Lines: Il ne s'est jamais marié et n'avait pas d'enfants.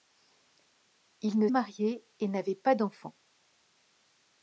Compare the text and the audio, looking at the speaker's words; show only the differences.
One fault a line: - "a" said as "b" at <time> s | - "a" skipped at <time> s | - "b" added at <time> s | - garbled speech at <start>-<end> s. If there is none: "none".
- "s'est jamais" skipped at 1.5 s